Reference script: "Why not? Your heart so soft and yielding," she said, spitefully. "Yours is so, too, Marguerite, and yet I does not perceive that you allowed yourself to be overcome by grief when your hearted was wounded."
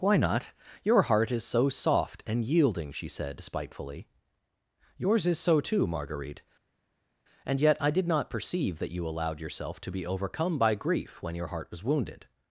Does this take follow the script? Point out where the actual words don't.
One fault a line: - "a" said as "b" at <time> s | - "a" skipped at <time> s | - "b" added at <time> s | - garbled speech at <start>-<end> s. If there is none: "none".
- "is" added at 1.3 s
- "does" said as "did" at 7.9 s
- "hearted" said as "heart" at 11.5 s